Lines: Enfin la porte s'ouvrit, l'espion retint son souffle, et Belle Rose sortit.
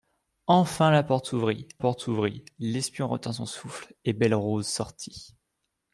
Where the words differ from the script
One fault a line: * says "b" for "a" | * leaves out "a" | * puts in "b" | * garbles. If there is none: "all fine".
* puts in "porte s'ouvrit"